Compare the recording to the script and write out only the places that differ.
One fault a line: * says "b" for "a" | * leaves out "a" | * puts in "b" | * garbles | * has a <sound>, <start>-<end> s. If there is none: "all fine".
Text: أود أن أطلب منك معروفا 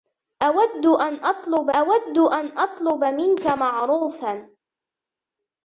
* puts in "أود أن أطلب"